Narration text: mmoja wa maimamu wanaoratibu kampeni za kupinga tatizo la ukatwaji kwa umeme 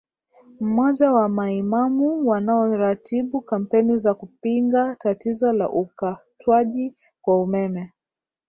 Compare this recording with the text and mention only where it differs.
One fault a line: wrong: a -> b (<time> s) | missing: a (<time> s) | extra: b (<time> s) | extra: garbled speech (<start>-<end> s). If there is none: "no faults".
no faults